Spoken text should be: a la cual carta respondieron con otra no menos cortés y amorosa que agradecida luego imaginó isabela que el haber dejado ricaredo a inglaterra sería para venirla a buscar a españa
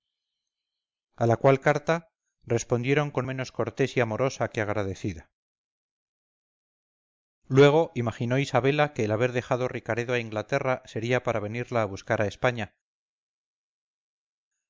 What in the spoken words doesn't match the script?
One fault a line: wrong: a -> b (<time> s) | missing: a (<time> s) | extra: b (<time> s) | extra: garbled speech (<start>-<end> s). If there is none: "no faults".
missing: otra no (3.3 s)